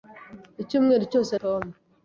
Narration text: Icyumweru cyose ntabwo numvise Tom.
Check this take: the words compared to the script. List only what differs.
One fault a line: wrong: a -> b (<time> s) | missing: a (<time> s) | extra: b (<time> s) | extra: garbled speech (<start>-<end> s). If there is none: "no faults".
missing: ntabwo numvise (1.3 s)